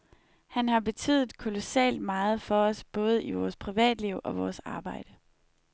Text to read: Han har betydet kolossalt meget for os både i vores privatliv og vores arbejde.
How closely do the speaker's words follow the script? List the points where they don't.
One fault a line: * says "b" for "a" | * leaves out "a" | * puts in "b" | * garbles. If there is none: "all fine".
all fine